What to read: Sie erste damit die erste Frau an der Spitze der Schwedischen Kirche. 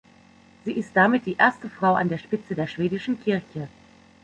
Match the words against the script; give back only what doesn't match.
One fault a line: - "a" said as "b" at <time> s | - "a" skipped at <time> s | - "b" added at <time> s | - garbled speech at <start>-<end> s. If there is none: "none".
- "erste" said as "ist" at 0.7 s